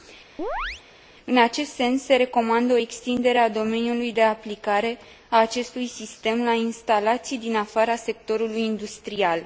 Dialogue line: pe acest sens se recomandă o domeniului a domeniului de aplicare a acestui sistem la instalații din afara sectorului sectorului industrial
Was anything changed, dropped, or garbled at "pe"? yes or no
yes